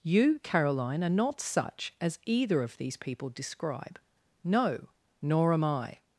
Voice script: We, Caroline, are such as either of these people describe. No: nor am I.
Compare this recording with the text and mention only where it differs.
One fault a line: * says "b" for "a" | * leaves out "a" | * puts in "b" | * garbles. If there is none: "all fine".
* says "You" for "We"
* puts in "not"